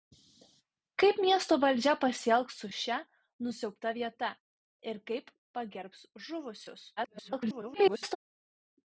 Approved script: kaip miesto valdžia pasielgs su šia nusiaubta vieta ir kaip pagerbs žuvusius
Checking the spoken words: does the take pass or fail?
fail